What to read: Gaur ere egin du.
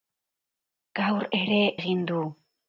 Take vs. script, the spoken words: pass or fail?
pass